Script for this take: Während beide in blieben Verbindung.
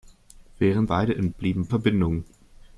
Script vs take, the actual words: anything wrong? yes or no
no